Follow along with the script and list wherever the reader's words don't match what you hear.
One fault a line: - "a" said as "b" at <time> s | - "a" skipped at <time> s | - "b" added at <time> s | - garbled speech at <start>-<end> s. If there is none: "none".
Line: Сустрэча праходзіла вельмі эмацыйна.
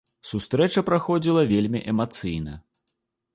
none